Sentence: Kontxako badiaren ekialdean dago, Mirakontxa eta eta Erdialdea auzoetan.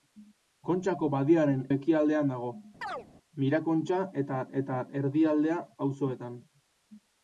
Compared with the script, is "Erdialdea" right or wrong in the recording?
right